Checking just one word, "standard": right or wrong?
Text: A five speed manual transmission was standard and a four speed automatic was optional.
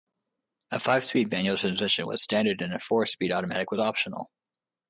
right